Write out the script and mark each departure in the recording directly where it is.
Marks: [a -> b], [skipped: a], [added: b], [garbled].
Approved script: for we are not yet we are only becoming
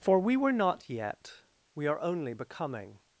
for we [are -> were] not yet we are only becoming